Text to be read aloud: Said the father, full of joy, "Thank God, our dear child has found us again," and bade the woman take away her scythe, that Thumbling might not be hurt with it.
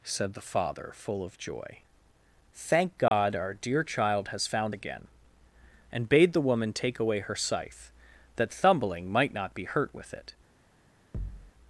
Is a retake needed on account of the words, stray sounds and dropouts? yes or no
yes